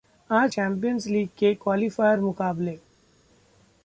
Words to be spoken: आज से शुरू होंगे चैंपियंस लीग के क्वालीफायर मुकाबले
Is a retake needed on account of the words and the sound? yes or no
yes